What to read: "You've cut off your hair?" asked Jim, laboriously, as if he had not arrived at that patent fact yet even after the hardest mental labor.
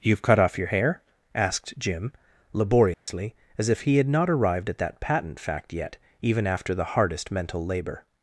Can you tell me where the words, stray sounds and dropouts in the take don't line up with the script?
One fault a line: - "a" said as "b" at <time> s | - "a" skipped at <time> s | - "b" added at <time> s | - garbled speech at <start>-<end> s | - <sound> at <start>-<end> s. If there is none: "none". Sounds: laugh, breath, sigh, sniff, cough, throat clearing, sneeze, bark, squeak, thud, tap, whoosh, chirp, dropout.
- dropout at 2.9-3.1 s